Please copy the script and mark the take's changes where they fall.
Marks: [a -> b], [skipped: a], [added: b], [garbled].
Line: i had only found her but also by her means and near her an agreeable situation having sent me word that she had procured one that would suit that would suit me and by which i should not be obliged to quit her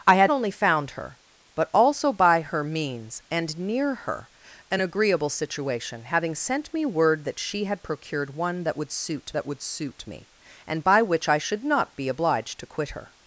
i had only found her but also by her means and near her an agreeable situation having sent me word that she had procured one that would suit that would suit me and by which i should not be obliged to quit her